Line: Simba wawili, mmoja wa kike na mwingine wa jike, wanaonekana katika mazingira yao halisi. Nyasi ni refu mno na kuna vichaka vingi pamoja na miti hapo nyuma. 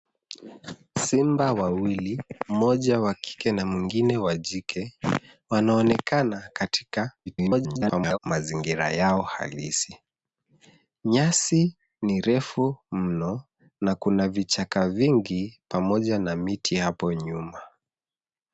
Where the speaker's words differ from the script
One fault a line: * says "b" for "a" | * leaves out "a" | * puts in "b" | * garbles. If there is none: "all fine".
* garbles